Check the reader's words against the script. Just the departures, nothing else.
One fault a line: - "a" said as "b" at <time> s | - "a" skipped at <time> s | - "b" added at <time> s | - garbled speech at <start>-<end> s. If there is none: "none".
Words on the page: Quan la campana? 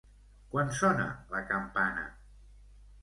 - "sona" added at 0.8 s